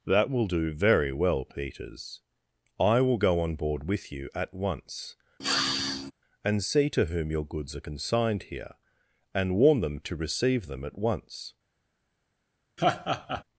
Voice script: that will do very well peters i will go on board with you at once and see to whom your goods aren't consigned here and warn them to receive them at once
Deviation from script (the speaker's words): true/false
true